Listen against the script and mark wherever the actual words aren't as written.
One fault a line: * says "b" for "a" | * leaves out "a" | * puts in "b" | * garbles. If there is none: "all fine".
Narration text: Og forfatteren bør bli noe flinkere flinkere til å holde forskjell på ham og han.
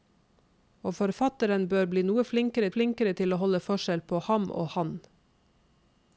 all fine